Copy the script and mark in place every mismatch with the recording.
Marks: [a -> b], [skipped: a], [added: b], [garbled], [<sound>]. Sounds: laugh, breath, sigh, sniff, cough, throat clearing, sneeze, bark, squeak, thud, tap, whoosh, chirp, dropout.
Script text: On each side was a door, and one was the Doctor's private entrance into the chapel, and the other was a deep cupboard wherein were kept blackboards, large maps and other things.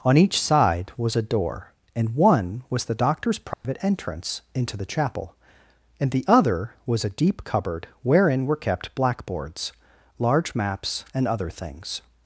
On each side was a door, and one was the Doctor's private [dropout] entrance into the chapel, and the other was a deep cupboard wherein were kept blackboards, large maps and other things.